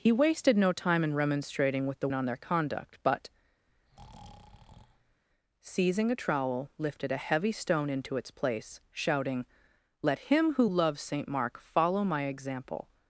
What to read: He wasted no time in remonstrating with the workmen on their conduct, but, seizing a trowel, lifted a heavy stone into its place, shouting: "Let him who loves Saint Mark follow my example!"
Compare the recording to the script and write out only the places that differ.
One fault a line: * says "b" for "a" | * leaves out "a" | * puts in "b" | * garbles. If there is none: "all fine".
* leaves out "workmen"